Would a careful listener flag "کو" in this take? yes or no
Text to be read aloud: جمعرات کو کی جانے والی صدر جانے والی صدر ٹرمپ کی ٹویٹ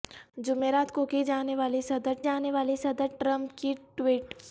no